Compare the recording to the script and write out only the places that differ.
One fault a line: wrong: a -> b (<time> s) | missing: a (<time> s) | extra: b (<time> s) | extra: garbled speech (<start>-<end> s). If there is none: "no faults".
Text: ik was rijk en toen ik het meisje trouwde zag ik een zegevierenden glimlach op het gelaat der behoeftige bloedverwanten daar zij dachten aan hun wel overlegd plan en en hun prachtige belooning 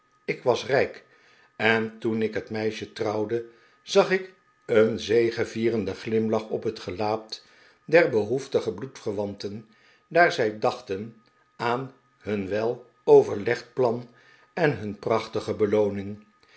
missing: en (14.8 s)